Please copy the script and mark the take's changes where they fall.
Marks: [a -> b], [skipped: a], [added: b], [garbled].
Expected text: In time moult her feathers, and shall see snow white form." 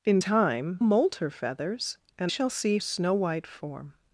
In time moult her feathers, and shall see snow white form."